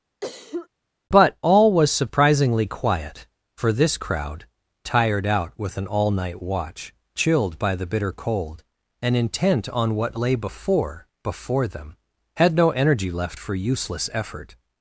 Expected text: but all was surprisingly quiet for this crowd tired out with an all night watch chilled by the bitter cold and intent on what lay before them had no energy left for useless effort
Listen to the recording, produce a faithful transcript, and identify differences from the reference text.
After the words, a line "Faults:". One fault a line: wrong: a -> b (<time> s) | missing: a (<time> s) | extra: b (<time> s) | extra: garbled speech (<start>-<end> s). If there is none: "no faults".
but all was surprisingly quiet for this crowd tired out with an all night watch chilled by the bitter cold and intent on what lay before before them had no energy left for useless effort
Faults:
extra: before (11.2 s)